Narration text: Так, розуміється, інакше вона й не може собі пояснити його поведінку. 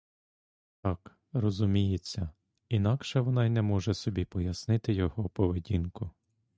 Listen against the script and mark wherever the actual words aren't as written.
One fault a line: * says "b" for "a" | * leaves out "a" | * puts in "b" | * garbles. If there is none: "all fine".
all fine